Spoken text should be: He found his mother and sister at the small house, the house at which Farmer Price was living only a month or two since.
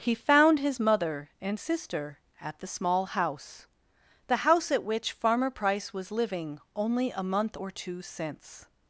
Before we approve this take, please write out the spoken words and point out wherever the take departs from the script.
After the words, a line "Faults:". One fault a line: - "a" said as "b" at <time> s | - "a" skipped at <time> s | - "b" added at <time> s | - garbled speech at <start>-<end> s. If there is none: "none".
He found his mother and sister at the small house, the house at which Farmer Price was living only a month or two since.
Faults:
none